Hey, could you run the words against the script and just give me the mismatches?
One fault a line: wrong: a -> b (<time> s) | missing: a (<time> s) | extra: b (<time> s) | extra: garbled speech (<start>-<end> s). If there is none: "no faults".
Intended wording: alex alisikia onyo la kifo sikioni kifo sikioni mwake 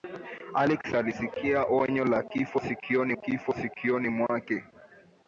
no faults